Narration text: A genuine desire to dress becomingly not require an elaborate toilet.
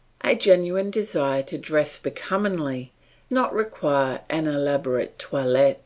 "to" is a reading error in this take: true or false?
false